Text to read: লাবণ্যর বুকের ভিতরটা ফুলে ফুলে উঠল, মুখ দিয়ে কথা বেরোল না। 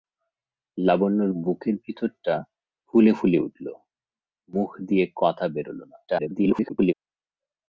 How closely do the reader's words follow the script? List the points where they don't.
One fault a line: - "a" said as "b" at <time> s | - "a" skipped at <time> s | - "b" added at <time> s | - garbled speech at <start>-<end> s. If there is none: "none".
- garbled speech at 6.1-6.9 s